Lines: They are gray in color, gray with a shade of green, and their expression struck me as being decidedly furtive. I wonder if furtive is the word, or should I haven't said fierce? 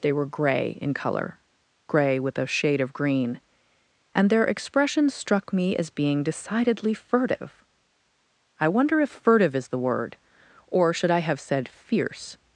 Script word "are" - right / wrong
wrong